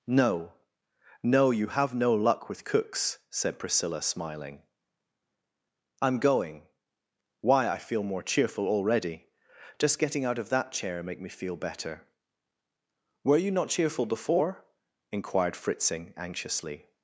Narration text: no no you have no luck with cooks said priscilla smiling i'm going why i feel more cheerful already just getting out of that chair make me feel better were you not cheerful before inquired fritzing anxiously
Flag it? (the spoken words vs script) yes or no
no